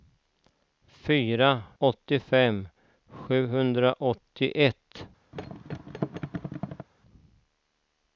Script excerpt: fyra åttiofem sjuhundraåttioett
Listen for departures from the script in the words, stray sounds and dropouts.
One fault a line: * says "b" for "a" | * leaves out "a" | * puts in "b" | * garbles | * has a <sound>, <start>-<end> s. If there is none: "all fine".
* has a thud, 5.3-6.9 s